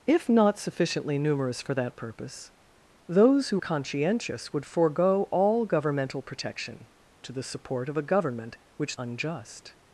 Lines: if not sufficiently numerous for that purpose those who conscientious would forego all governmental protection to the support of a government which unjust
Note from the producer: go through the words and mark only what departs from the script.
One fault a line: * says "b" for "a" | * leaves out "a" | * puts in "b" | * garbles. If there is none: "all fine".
all fine